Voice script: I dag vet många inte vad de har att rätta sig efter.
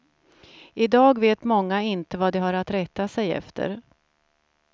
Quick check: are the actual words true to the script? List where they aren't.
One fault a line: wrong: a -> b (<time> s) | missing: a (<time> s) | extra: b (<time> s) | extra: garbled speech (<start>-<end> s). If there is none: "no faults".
no faults